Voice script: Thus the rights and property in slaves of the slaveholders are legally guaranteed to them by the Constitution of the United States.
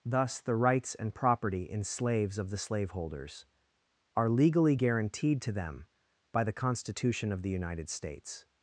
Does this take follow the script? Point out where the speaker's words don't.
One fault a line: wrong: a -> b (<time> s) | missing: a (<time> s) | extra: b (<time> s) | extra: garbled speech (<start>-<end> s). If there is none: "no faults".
no faults